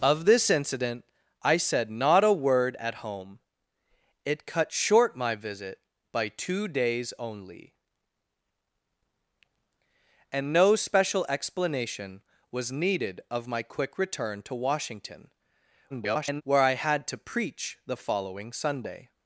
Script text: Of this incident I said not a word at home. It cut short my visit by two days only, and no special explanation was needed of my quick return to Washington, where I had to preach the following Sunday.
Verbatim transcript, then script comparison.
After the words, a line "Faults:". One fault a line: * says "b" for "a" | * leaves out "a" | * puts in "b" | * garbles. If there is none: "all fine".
Of this incident I said not a word at home. It cut short my visit by two days only, and no special explanation was needed of my quick return to Washington, [garbled] where I had to preach the following Sunday.
Faults:
* garbles